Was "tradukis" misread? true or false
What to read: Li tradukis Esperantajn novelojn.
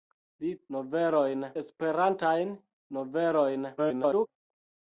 true